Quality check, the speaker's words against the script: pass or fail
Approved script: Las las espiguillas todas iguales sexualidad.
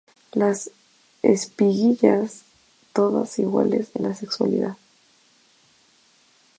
fail